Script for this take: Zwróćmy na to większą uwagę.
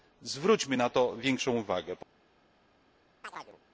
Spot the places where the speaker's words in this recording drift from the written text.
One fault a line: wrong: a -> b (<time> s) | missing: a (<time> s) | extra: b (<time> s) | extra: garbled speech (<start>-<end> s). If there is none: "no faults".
no faults